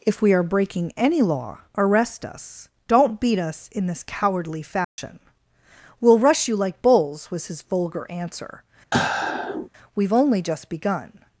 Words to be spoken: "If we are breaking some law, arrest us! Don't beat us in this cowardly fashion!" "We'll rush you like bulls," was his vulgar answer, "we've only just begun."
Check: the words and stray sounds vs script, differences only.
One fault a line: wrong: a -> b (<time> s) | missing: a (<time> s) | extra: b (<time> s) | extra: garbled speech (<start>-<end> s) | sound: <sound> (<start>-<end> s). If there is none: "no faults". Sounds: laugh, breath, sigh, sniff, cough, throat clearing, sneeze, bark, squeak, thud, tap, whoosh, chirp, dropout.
wrong: some -> any (1.0 s)
sound: dropout (4.8-5.0 s)
sound: sigh (8.9-9.7 s)